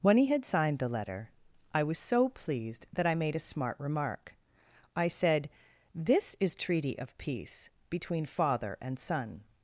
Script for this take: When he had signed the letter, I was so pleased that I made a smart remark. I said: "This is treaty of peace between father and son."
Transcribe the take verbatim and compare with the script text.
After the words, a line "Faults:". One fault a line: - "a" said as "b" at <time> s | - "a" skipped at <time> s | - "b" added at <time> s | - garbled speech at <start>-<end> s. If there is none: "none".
When he had signed the letter, I was so pleased that I made a smart remark. I said: "This is treaty of peace between father and son."
Faults:
none